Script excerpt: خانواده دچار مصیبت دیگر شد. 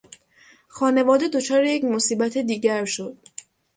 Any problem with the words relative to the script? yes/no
yes